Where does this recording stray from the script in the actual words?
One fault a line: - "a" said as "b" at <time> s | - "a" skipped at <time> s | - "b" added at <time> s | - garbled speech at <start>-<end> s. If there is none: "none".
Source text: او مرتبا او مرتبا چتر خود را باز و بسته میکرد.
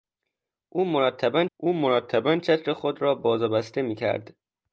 none